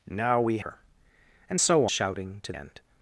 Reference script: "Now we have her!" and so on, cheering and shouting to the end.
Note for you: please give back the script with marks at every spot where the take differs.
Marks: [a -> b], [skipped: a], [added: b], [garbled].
"Now we [skipped: have] her!" and so [skipped: on, cheering and] shouting to [skipped: the] end.